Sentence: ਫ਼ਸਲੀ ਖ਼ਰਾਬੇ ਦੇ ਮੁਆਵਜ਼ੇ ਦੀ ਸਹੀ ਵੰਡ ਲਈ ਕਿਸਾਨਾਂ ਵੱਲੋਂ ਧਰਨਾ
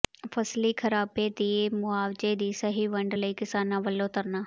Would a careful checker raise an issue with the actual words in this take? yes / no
no